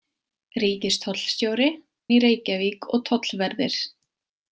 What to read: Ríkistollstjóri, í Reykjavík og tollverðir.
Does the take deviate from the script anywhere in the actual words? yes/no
no